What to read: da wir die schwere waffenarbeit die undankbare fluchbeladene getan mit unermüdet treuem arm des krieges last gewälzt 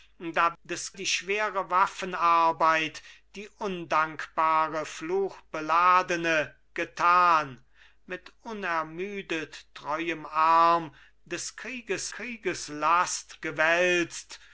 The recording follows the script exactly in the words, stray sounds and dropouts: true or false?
false